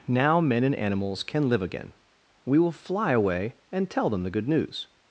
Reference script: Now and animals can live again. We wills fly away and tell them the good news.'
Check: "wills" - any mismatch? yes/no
yes